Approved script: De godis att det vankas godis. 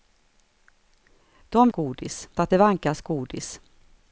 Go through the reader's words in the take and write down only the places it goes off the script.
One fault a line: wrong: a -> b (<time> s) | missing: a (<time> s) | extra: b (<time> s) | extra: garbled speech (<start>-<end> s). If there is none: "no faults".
no faults